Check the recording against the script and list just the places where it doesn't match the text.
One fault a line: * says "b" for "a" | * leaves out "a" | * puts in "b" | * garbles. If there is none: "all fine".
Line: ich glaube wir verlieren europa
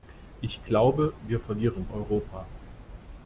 all fine